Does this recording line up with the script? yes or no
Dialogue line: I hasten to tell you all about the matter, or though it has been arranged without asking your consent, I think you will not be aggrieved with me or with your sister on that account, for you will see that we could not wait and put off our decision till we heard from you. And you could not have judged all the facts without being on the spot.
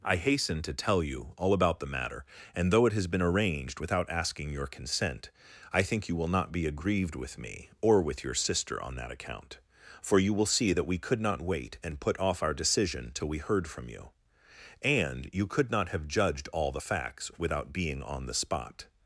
no